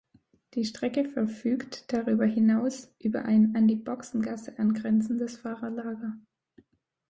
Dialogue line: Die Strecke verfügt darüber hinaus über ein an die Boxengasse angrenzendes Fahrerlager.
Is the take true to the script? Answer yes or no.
yes